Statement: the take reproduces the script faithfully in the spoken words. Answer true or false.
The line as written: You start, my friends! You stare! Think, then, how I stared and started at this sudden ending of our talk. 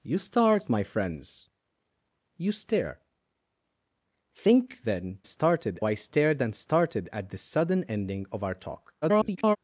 false